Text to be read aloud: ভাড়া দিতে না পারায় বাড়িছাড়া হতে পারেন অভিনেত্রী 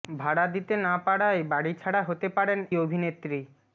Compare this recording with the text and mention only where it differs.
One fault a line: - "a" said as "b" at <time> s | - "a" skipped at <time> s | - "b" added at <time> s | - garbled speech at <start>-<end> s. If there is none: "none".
none